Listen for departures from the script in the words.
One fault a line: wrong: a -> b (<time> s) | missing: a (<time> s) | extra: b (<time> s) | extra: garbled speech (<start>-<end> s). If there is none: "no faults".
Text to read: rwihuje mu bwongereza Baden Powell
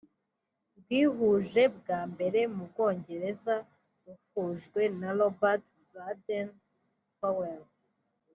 extra: bwa mbere (1.8 s)
extra: ruhujwe na Robert (4.0 s)